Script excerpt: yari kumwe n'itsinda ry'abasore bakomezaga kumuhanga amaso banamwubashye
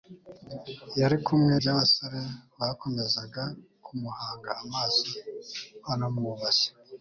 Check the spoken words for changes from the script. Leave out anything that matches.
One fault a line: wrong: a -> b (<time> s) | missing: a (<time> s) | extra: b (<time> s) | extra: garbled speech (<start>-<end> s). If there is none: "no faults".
missing: n'itsinda (1.5 s)